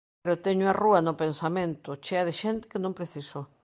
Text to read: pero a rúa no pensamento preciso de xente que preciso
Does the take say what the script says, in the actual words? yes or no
no